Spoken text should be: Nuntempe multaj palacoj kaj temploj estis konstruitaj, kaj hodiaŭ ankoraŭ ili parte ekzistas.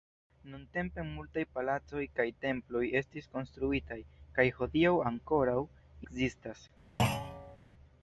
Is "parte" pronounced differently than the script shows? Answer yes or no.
yes